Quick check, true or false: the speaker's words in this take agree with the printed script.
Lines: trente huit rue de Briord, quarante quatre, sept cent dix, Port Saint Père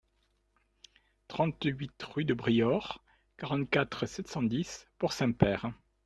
true